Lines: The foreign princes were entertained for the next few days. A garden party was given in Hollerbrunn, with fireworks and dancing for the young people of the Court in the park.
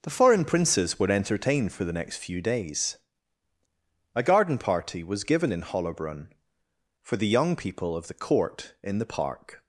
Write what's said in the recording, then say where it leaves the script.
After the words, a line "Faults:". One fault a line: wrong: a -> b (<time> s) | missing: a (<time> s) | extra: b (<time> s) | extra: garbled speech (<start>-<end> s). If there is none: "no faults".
The foreign princes were entertained for the next few days. A garden party was given in Hollerbrunn, for the young people of the Court in the park.
Faults:
missing: with fireworks and dancing (6.3 s)